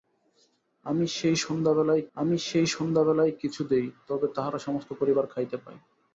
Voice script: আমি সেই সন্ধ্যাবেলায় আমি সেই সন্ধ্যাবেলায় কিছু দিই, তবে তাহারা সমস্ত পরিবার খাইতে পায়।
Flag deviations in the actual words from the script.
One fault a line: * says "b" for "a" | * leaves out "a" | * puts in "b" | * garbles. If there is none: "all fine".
all fine